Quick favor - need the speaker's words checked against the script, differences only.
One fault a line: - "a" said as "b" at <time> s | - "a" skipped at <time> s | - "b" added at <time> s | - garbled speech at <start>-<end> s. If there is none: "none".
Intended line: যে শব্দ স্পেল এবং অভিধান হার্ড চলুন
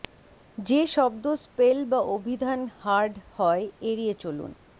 - "এবং" said as "বা" at 1.9 s
- "হয় এড়িয়ে" added at 3.4 s